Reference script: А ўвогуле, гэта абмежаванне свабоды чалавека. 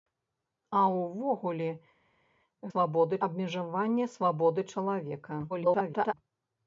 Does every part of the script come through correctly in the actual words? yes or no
no